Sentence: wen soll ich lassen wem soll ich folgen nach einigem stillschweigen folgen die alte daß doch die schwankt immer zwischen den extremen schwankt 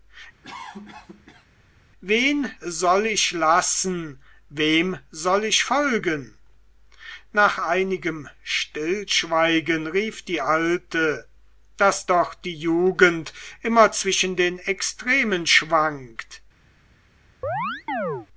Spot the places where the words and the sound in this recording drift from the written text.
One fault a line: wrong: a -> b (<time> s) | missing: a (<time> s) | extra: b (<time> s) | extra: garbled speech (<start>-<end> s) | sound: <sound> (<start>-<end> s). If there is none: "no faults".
sound: cough (0.4-1.5 s)
wrong: folgen -> rief (9.9 s)
wrong: schwankt -> jugend (12.5 s)
sound: chirp (17.4-18.3 s)